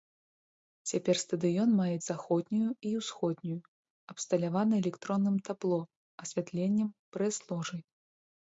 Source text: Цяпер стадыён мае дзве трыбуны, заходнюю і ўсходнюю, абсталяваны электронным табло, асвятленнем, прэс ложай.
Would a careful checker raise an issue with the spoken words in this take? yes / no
yes